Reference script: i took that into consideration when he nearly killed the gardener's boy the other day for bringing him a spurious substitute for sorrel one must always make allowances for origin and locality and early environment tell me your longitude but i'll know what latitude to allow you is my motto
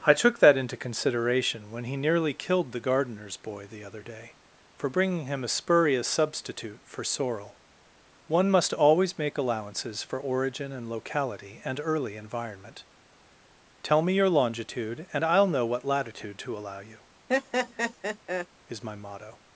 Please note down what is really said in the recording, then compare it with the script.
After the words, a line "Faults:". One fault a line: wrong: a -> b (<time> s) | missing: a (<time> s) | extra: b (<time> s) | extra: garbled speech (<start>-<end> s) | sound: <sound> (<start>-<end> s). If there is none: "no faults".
i took that into consideration when he nearly killed the gardener's boy the other day for bringing him a spurious substitute for sorrel one must always make allowances for origin and locality and early environment tell me your longitude and i'll know what latitude to allow you is my motto
Faults:
wrong: but -> and (15.1 s)
sound: laugh (17.3-18.5 s)